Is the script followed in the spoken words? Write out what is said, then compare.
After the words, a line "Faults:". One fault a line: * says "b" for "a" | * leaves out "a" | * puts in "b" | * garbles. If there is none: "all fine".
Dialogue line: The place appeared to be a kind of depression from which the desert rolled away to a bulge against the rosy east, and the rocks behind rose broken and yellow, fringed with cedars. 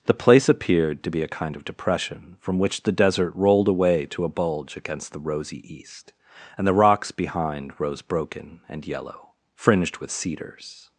The place appeared to be a kind of depression from which the desert rolled away to a bulge against the rosy east, and the rocks behind rose broken and yellow, fringed with cedars.
Faults:
all fine